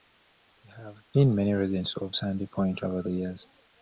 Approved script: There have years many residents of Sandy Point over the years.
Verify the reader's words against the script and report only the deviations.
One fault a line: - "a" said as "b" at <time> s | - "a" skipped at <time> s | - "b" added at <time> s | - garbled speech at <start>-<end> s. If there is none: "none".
- "years" said as "been" at 1.1 s